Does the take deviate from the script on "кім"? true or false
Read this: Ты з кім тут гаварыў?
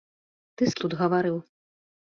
true